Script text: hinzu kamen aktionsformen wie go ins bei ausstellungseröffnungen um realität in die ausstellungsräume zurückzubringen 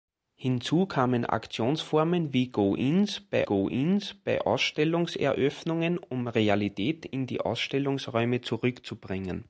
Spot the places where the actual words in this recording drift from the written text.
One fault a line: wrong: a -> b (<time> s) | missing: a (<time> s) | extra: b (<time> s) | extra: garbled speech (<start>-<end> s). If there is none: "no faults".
extra: go ins bei (3.4 s)